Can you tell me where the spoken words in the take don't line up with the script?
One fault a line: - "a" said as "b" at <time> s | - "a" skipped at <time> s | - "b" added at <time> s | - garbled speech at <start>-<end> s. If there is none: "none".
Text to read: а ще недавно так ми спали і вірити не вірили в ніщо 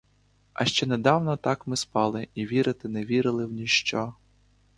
none